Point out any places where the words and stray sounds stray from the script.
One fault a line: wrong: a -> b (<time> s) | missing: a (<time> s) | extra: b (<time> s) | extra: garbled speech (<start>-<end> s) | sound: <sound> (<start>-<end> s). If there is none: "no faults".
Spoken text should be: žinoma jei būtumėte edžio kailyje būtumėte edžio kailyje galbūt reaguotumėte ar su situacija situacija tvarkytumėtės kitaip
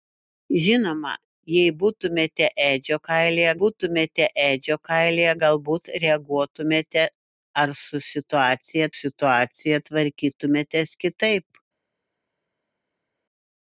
no faults